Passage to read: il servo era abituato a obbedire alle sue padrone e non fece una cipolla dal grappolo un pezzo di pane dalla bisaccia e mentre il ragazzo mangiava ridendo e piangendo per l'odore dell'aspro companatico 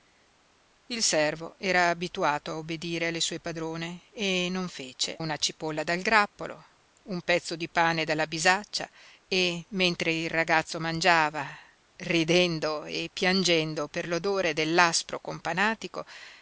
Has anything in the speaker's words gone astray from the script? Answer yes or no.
no